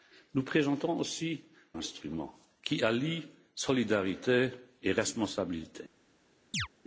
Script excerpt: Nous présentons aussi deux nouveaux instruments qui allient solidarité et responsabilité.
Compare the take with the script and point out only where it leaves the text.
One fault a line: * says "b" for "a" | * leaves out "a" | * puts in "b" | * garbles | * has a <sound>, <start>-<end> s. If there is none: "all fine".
* leaves out "deux nouveaux"
* has a chirp, 6.5-6.7 s